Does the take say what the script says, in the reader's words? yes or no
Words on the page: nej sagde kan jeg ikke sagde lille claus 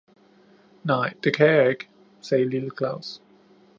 no